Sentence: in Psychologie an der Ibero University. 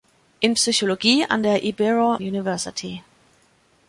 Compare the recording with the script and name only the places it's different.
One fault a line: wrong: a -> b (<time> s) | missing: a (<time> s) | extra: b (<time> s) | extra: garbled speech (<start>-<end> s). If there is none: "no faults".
no faults